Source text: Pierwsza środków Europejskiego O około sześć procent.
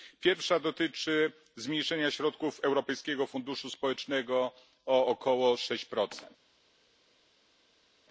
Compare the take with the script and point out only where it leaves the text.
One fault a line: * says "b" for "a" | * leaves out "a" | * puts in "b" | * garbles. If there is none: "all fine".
* puts in "dotyczy zmniejszenia"
* puts in "Funduszu Społecznego"